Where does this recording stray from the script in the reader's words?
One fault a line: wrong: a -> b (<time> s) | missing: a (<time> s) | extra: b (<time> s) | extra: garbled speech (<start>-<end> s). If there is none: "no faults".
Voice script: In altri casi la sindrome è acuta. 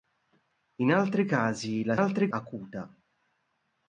wrong: sindrome -> altri (1.9 s)